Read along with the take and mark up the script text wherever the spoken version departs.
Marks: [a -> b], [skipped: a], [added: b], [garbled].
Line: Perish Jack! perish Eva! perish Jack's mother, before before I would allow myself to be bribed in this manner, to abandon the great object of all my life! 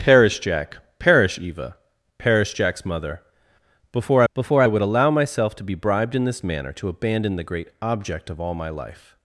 Perish Jack! perish Eva! perish Jack's mother, before before I would allow myself to be bribed in this manner, to abandon the great object of all my life!